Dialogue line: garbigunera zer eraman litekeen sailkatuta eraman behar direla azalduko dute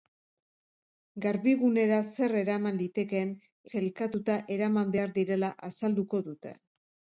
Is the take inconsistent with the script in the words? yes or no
no